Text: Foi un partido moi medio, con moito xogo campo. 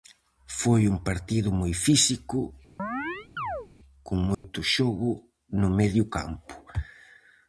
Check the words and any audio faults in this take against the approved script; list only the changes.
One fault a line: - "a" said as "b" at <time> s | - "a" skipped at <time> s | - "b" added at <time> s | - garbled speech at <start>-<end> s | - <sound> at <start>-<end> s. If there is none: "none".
- "medio" said as "físico" at 1.9 s
- chirp at 2.8-3.7 s
- dropout at 4.3-4.4 s
- "no medio" added at 5.6 s